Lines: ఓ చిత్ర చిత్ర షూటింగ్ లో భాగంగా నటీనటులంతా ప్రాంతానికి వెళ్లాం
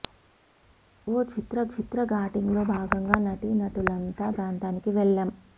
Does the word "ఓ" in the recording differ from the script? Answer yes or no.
no